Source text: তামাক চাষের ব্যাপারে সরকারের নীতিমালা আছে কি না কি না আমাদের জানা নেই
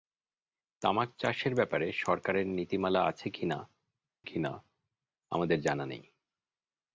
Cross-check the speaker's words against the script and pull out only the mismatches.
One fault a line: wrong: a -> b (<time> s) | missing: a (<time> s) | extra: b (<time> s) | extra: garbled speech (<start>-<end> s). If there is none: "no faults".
no faults